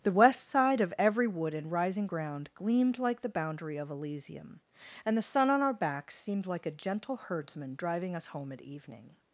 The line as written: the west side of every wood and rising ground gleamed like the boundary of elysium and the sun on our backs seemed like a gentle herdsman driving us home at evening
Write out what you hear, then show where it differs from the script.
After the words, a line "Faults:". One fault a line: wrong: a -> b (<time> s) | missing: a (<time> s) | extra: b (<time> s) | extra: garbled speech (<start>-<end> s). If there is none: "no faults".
the west side of every wood and rising ground gleamed like the boundary of elysium and the sun on our backs seemed like a gentle herdsman driving us home at evening
Faults:
no faults